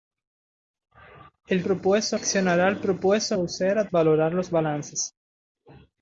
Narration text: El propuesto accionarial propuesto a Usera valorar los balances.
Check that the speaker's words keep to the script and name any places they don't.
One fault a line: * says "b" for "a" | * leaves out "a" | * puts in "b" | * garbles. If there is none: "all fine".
all fine